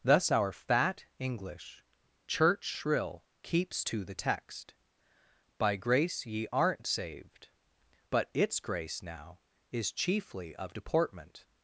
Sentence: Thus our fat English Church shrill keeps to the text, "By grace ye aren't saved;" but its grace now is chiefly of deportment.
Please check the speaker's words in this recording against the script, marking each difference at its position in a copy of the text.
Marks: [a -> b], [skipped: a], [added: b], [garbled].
Thus our fat English Church shrill keeps to the text, "By grace ye aren't saved;" but its grace now is chiefly of deportment.